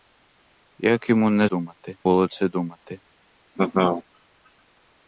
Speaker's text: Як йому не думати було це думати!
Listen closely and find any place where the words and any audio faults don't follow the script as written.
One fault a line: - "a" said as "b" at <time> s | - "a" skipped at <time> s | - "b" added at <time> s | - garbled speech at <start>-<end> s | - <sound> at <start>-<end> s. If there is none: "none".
- laugh at 3.6-4.0 s